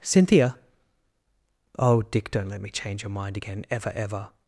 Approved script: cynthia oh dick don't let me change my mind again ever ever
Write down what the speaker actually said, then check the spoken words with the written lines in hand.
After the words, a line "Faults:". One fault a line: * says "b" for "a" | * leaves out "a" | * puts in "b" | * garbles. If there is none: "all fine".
cynthia oh dick don't let me change your mind again ever ever
Faults:
* says "your" for "my"